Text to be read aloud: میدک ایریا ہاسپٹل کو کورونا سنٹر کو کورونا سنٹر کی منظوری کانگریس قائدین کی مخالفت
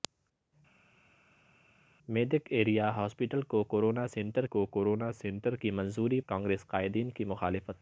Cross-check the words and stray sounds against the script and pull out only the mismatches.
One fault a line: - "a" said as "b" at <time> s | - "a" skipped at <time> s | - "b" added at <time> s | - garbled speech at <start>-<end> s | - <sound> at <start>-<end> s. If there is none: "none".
none